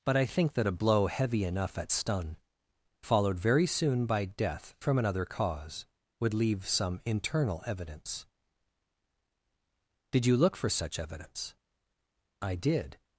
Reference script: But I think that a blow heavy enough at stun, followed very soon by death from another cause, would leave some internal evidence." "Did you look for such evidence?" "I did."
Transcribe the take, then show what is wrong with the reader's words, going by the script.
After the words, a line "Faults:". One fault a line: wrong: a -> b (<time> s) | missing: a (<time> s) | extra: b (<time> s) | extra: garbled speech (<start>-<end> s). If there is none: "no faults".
But I think that a blow heavy enough at stun, followed very soon by death from another cause, would leave some internal evidence." "Did you look for such evidence?" "I did."
Faults:
no faults